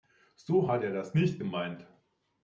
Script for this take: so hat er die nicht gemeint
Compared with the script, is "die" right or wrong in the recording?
wrong